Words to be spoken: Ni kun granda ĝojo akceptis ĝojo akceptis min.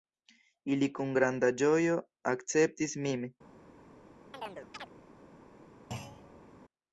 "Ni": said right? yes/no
no